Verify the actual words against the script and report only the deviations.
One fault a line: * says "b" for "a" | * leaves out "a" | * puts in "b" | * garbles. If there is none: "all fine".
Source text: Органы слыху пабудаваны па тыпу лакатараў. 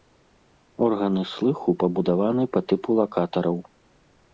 all fine